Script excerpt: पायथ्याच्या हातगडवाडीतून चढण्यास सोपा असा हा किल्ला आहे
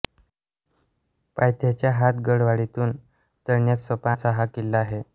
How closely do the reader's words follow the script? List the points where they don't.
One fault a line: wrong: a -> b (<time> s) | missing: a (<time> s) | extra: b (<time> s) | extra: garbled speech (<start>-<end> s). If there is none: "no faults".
no faults